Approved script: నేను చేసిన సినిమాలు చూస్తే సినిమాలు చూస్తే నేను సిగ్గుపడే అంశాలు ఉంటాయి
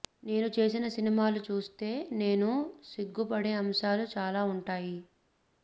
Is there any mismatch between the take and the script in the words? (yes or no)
yes